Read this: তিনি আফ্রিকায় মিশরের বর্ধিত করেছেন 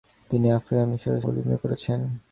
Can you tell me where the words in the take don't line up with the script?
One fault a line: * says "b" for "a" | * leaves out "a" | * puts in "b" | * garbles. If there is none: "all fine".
all fine